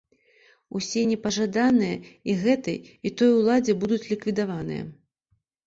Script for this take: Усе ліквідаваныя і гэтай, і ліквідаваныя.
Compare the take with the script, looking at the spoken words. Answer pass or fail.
fail